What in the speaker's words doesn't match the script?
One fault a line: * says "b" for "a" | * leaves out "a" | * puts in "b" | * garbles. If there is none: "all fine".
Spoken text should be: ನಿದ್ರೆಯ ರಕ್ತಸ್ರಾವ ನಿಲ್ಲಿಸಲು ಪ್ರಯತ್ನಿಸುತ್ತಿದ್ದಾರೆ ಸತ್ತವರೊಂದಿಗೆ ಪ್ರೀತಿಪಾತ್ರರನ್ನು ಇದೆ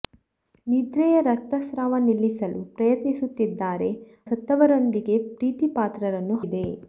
all fine